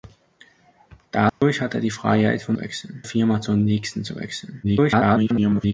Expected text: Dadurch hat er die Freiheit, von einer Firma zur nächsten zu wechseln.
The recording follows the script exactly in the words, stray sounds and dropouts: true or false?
false